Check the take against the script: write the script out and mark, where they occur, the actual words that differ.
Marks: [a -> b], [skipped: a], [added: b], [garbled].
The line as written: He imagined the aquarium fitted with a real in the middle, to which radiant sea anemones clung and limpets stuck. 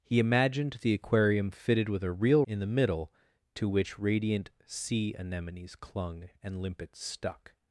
He imagined the aquarium fitted with a real in the middle, to which radiant sea anemones clung and limpets stuck.